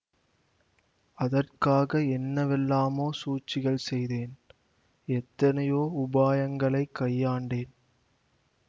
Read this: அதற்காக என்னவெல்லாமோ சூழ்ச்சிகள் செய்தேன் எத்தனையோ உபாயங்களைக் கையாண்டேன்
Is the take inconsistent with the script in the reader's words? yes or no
no